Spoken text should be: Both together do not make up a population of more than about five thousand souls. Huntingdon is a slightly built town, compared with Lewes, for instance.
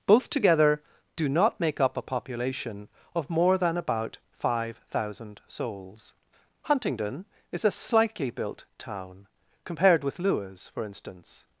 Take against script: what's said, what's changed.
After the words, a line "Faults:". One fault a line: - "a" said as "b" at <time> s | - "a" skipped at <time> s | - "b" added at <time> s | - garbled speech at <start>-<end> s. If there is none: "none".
Both together do not make up a population of more than about five thousand souls. Huntingdon is a slightly built town, compared with Lewes, for instance.
Faults:
none